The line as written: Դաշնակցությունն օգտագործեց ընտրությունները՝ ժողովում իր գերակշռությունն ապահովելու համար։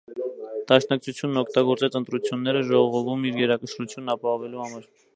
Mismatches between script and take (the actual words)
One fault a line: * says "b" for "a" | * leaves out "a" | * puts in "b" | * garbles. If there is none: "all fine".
all fine